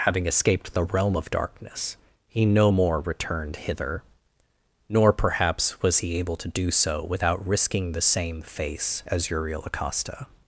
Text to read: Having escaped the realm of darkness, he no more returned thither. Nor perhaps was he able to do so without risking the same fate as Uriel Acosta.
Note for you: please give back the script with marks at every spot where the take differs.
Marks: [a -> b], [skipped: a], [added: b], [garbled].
Having escaped the realm of darkness, he no more returned [thither. -> hither] Nor perhaps was he able to do so without risking the same [fate -> face] as Uriel Acosta.